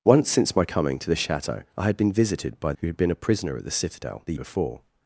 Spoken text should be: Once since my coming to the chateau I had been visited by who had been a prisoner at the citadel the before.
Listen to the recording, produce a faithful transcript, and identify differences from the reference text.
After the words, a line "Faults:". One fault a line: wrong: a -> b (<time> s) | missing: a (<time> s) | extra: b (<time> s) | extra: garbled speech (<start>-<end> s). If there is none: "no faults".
Once since my coming to the chateau I had been visited by who had been a prisoner at the citadel the before.
Faults:
no faults